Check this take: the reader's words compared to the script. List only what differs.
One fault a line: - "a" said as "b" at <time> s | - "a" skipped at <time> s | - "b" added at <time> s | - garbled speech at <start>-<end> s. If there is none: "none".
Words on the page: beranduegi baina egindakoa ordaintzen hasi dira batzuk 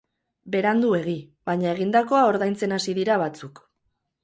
none